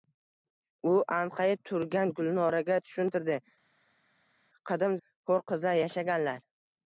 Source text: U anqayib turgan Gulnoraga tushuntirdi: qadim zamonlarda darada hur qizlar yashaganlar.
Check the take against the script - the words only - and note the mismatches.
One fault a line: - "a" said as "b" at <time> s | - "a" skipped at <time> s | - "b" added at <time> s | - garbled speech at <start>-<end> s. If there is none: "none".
- "zamonlarda darada" skipped at 5.0 s